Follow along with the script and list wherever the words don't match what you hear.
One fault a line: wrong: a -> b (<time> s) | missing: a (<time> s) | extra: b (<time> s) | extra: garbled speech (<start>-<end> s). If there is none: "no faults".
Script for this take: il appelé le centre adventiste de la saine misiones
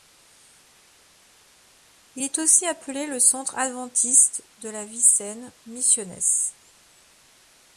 extra: est aussi (2.2 s)
extra: vie (4.8 s)